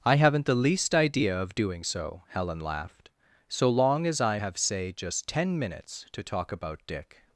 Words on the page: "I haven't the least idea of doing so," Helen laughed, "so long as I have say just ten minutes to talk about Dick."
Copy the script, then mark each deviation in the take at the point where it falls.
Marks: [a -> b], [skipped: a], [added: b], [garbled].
"I haven't the least idea of doing so," Helen laughed, "so long as I have say just ten minutes to talk about Dick."